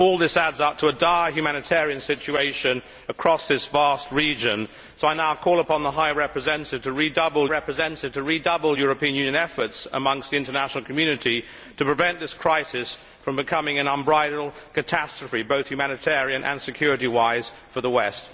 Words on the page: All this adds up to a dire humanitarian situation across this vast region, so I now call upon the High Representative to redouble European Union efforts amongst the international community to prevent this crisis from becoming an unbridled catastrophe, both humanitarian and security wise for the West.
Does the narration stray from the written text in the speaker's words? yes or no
yes